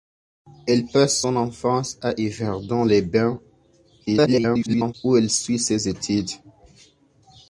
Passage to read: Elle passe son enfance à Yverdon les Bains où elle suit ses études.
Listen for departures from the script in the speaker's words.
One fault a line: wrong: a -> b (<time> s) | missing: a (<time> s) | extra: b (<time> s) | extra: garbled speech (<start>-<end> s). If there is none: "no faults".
extra: garbled speech (4.1-4.9 s)